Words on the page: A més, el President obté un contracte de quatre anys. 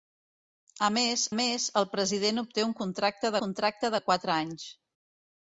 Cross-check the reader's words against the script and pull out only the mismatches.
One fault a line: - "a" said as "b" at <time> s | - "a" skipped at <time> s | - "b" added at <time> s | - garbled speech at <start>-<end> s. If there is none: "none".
- "més" added at 1.4 s
- "contracte" added at 3.5 s